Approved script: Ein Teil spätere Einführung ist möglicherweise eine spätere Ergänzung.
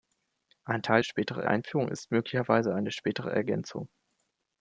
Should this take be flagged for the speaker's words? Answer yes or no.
no